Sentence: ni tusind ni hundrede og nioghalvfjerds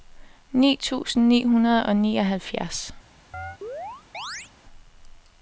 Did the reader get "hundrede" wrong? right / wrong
right